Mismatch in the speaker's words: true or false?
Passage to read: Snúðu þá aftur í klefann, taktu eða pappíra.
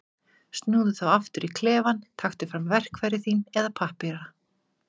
true